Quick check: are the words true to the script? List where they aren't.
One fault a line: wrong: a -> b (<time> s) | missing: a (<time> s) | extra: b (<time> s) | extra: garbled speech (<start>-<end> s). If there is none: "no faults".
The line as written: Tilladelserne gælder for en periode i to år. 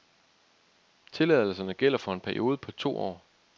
wrong: i -> på (2.6 s)